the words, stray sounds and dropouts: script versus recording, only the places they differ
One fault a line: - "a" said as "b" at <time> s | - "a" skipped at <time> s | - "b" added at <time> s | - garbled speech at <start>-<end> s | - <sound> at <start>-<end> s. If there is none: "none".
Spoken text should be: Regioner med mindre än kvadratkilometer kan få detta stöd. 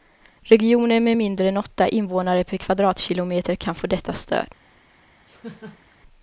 - "åtta invånare per" added at 1.6 s
- laugh at 5.3-6.0 s